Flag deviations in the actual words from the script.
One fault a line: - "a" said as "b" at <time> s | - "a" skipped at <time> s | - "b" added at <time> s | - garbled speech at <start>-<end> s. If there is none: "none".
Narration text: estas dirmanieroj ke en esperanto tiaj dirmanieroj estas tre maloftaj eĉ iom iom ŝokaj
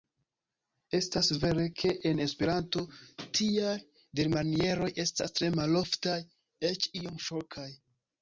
- "dirmanieroj" said as "vere" at 1.4 s
- "iom" skipped at 7.2 s